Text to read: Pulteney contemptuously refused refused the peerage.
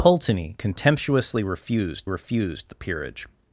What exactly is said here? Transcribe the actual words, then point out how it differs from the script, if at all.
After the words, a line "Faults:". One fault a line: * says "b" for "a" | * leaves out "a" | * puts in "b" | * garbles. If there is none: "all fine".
Pulteney contemptuously refused refused the peerage.
Faults:
all fine